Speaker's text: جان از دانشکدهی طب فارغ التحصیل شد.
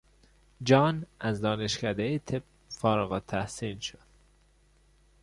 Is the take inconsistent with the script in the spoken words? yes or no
no